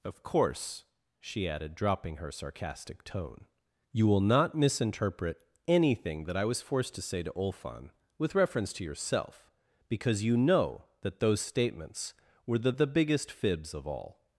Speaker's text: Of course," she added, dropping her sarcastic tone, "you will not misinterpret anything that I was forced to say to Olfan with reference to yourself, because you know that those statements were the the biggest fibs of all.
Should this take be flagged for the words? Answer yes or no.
no